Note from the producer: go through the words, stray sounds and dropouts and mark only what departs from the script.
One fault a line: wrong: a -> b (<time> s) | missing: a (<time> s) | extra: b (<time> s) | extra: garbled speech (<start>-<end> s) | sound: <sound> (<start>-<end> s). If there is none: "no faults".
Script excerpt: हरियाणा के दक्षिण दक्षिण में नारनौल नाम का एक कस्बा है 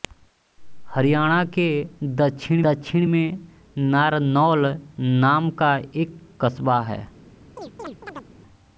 sound: chirp (7.6-8.3 s)